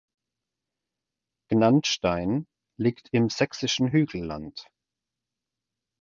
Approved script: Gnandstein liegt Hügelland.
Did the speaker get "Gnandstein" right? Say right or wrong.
right